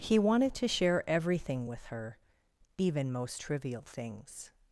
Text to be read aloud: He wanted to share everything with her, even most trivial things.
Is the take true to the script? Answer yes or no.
yes